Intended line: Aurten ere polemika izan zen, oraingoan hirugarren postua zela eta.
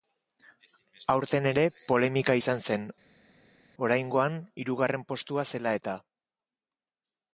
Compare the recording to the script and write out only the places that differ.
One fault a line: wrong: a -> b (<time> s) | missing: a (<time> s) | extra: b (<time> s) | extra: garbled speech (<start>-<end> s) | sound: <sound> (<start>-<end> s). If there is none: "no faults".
no faults